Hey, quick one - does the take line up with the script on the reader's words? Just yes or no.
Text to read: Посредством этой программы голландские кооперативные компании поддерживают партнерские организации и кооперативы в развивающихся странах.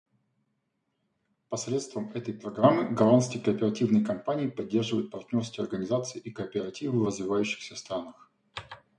yes